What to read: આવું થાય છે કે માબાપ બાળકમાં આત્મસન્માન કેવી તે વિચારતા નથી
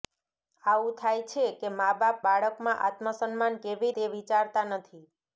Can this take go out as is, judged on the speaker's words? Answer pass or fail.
pass